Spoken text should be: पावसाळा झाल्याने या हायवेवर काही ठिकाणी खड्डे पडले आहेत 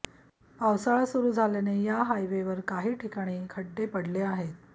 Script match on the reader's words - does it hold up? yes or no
no